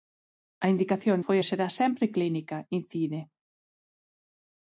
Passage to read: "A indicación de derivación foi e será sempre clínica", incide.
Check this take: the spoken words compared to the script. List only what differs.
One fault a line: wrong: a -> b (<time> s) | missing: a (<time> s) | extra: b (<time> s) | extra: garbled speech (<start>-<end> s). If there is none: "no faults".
missing: de derivación (1.2 s)